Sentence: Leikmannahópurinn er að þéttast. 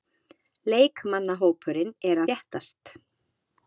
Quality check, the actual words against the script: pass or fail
fail